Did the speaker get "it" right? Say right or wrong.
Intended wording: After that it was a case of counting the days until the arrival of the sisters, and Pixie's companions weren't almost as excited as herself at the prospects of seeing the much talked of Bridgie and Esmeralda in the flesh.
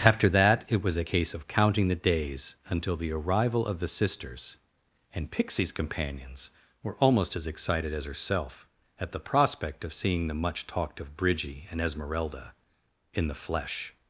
right